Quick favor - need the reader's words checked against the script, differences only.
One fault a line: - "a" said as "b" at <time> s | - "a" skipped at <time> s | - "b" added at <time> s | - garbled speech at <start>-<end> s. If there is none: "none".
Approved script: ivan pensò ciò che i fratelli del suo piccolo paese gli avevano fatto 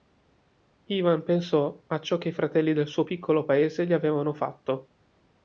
- "a" added at 1.9 s